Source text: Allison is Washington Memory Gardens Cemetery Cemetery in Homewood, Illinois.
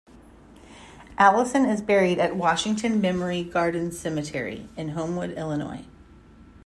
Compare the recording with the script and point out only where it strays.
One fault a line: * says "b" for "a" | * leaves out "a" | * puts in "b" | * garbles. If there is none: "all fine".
* puts in "buried at"
* leaves out "Cemetery"